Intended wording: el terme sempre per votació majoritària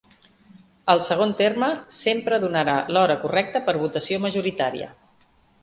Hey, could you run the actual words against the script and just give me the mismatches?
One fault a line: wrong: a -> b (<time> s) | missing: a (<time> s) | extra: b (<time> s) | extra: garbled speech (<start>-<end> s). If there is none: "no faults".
extra: segon (1.1 s)
extra: donarà l'hora correcta (2.5 s)